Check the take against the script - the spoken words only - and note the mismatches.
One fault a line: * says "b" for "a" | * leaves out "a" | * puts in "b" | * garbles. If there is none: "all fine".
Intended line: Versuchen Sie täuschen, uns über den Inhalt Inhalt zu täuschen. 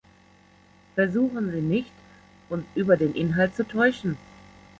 * says "nicht" for "täuschen"
* leaves out "Inhalt"